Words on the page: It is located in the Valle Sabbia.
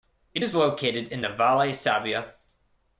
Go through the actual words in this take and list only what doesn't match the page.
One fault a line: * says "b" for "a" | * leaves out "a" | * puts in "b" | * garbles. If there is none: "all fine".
all fine